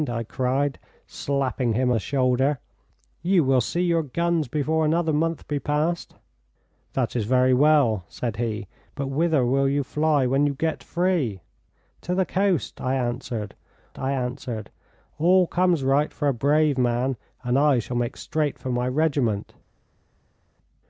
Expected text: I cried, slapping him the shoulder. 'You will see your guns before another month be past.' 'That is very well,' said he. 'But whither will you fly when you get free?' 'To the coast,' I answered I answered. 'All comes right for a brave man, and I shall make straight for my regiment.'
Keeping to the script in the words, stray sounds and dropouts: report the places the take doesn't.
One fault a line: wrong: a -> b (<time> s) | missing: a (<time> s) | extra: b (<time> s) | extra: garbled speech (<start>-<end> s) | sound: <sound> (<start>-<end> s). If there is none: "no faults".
no faults